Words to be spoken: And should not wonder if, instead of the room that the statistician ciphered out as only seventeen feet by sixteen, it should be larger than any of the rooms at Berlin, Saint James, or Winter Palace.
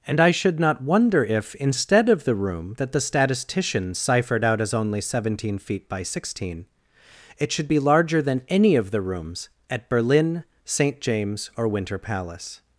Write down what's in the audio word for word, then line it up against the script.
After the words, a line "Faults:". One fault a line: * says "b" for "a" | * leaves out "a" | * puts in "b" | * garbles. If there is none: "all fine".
And I should not wonder if, instead of the room that the statistician ciphered out as only seventeen feet by sixteen, it should be larger than any of the rooms at Berlin, Saint James, or Winter Palace.
Faults:
* puts in "I"